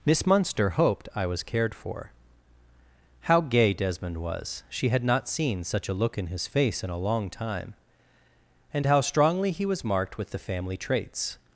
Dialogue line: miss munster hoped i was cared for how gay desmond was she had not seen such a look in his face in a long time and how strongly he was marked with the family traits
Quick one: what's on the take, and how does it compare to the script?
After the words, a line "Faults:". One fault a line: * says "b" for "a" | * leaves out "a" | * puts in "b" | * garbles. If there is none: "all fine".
miss munster hoped i was cared for how gay desmond was she had not seen such a look in his face in a long time and how strongly he was marked with the family traits
Faults:
all fine